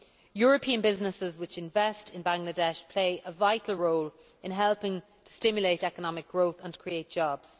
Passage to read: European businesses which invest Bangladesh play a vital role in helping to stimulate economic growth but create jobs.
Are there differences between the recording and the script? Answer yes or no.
yes